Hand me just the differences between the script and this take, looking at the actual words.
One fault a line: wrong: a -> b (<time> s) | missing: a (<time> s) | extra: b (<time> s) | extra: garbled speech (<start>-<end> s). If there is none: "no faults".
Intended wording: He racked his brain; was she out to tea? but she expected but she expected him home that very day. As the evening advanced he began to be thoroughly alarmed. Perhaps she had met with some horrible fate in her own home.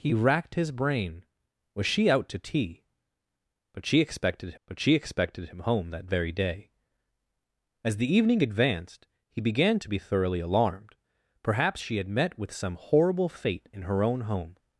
no faults